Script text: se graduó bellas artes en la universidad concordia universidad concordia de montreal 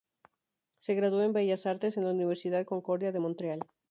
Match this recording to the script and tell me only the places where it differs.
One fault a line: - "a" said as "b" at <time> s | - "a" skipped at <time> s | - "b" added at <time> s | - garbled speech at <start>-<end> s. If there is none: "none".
- "en" added at 1.2 s
- "universidad concordia" skipped at 3.1 s